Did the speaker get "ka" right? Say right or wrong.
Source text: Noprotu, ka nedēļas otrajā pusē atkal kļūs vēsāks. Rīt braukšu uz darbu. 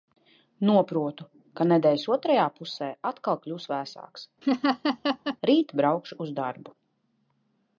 right